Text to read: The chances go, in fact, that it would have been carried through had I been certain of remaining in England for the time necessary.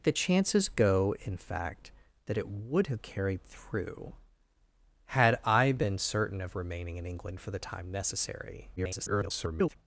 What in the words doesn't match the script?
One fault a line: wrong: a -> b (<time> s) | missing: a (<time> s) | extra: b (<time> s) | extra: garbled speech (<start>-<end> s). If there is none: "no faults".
missing: been (3.0 s)
extra: garbled speech (8.8-9.8 s)